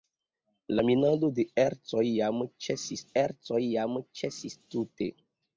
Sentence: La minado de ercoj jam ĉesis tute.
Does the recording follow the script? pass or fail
fail